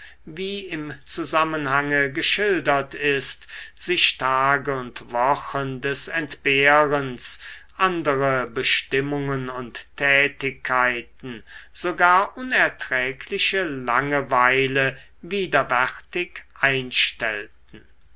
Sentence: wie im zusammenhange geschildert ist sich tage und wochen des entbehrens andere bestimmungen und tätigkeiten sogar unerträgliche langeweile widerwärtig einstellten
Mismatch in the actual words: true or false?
false